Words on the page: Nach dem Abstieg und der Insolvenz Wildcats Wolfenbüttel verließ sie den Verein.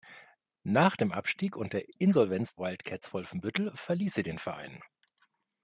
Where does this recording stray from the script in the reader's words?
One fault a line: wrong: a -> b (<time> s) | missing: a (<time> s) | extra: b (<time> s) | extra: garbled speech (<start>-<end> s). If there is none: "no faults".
no faults